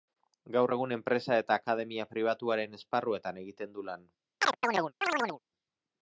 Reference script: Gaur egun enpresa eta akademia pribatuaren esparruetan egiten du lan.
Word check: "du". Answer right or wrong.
right